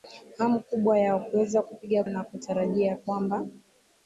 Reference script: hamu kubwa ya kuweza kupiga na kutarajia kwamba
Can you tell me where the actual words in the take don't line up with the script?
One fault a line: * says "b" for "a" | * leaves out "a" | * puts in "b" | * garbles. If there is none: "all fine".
all fine